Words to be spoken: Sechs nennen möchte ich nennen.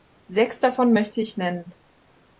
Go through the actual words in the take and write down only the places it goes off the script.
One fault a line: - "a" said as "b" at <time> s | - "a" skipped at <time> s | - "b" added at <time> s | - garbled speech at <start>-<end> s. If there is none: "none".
- "nennen" said as "davon" at 0.6 s